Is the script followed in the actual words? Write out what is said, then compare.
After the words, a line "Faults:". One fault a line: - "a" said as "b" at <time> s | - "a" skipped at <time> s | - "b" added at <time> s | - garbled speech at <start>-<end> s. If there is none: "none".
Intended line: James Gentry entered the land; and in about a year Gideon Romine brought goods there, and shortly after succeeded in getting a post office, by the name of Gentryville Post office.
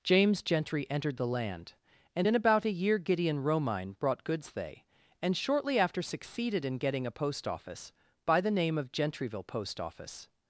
James Gentry entered the land; and in about a year Gideon Romine brought goods they, and shortly after succeeded in getting a post office, by the name of Gentryville Post office.
Faults:
- "there" said as "they" at 4.5 s